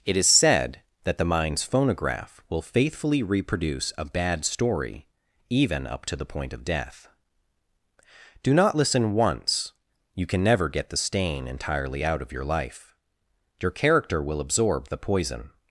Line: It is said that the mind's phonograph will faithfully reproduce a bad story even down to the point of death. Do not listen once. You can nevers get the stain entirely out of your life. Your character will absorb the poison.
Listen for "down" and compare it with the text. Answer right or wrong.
wrong